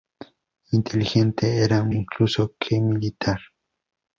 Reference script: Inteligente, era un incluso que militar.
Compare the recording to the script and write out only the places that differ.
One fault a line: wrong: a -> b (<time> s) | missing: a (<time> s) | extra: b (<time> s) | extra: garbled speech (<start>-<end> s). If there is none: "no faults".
no faults